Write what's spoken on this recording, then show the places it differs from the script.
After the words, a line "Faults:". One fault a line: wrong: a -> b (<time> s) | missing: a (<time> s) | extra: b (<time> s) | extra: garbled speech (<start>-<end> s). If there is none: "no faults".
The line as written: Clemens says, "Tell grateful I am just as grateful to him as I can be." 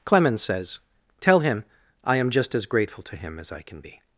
Clemens says, "Tell him I am just as grateful to him as I can be."
Faults:
wrong: grateful -> him (1.4 s)